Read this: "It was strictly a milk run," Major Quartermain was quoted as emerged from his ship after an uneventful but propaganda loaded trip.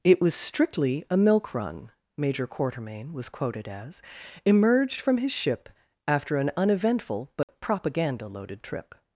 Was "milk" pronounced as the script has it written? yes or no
yes